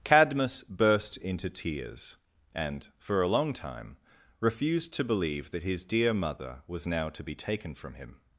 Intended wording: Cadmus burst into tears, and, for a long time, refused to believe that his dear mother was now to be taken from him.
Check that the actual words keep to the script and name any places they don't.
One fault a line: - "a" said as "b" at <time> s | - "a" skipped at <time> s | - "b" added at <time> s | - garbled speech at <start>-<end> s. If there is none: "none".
none